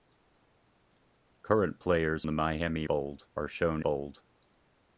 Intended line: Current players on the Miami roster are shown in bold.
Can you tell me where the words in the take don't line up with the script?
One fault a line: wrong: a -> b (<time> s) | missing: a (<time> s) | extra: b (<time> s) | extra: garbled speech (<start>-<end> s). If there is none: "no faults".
missing: on (2.2 s)
wrong: roster -> bold (2.8 s)
missing: in (3.8 s)